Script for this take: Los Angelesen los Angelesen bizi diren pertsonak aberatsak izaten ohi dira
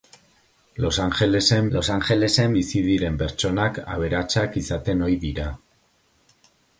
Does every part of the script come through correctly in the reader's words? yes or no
yes